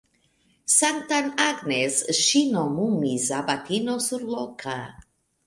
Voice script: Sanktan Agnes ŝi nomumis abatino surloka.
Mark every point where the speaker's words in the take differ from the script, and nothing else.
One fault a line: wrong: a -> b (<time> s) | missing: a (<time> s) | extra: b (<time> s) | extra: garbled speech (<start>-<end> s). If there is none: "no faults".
no faults